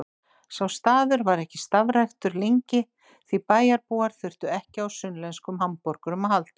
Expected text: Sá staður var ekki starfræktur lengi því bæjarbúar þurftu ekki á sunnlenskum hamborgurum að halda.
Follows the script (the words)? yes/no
yes